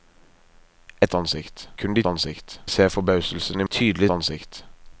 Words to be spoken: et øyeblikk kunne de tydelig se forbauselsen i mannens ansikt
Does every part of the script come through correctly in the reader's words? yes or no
no